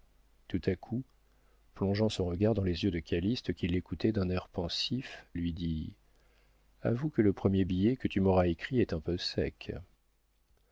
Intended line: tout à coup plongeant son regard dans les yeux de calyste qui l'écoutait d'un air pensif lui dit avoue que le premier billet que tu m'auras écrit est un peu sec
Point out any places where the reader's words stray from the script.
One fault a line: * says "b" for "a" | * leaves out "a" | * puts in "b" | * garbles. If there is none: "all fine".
all fine